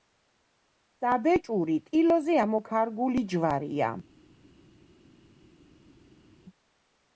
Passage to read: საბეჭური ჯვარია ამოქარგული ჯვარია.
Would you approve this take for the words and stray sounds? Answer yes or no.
no